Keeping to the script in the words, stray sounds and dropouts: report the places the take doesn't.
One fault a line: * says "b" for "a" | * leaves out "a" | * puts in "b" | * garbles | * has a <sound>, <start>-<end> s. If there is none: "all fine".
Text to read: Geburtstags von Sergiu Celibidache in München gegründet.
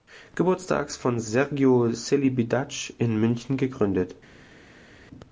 all fine